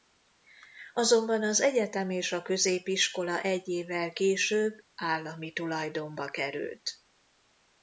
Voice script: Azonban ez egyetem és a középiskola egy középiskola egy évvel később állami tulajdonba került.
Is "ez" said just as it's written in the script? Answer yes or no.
no